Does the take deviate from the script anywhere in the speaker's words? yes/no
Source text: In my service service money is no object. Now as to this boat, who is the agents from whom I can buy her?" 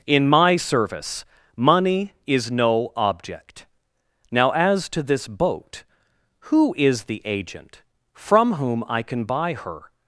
yes